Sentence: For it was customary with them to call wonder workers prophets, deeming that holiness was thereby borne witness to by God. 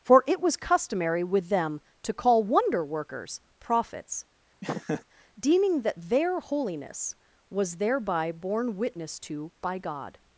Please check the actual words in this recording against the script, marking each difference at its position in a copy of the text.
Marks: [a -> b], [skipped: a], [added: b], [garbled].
For it was customary with them to call wonder workers prophets, deeming that [added: their] holiness was thereby borne witness to by God.